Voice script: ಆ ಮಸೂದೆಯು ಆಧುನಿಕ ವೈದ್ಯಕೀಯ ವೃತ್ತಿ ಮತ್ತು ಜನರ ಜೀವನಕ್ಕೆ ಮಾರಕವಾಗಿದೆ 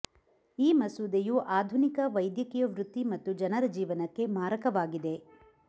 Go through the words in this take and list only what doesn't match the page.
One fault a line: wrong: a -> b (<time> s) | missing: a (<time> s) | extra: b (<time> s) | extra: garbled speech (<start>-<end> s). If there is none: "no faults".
wrong: ಆ -> ಈ (0.6 s)